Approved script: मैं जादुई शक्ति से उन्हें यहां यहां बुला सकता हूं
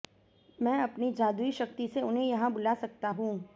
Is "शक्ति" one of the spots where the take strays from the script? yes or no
no